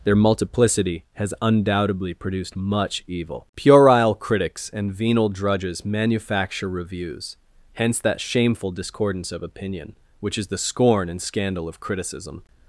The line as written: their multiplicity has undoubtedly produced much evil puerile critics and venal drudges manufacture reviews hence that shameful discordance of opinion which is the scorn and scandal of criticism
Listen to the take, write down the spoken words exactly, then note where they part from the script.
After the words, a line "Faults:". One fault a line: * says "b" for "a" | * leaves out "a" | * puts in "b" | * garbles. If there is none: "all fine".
their multiplicity has undoubtedly produced much evil puerile critics and venal drudges manufacture reviews hence that shameful discordance of opinion which is the scorn and scandal of criticism
Faults:
all fine